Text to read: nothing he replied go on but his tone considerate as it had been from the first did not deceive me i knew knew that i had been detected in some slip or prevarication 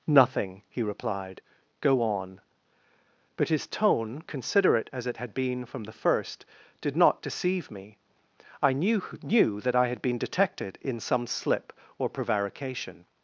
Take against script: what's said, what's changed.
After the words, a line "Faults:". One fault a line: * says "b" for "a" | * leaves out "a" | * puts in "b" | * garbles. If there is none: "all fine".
nothing he replied go on but his tone considerate as it had been from the first did not deceive me i knew knew that i had been detected in some slip or prevarication
Faults:
all fine